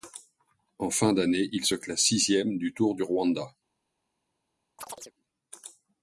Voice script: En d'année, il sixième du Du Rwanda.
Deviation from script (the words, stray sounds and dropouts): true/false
true